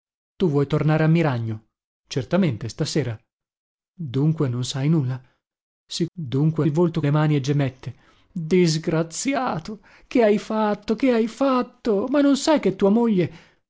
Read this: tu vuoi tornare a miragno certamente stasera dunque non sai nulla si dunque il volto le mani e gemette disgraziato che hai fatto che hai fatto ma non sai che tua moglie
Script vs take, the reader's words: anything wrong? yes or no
no